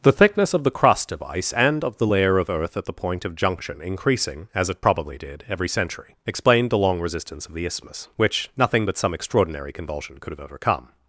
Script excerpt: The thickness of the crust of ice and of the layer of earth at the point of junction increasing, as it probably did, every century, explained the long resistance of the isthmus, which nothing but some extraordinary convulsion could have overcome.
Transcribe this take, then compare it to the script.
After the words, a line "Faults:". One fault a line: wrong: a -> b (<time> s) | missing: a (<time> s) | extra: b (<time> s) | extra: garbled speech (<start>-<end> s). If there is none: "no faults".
The thickness of the crust of ice and of the layer of earth at the point of junction increasing, as it probably did, every century, explained the long resistance of the isthmus, which nothing but some extraordinary convulsion could have overcome.
Faults:
no faults